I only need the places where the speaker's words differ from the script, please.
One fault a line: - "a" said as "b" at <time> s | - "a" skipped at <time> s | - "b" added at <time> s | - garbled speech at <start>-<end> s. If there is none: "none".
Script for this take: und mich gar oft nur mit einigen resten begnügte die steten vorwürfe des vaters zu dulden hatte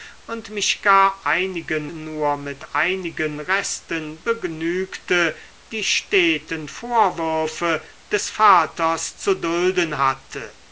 - "oft" said as "einigen" at 1.2 s